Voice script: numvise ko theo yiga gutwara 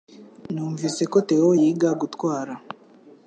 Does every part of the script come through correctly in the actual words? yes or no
yes